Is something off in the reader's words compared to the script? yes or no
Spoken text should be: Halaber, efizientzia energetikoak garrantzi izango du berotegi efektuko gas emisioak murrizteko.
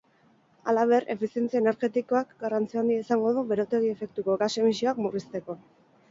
yes